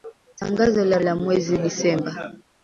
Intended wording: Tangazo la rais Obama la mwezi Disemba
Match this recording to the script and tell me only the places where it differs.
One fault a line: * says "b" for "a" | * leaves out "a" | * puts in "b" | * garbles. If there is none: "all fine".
* leaves out "rais Obama"